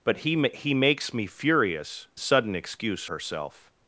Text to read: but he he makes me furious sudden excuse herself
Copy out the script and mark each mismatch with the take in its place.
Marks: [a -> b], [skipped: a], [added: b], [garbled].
but he he makes me furious sudden excuse herself